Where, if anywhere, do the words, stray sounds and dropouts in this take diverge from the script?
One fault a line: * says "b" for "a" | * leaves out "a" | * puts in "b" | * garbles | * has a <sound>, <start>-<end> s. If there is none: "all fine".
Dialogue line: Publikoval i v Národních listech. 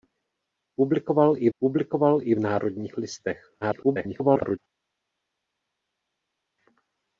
* puts in "publikoval i"
* garbles